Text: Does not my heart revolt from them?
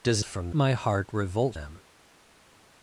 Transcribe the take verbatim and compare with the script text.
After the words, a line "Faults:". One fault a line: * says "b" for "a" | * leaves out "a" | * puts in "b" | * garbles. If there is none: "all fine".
Does from my heart revolt them?
Faults:
* says "from" for "not"
* leaves out "from"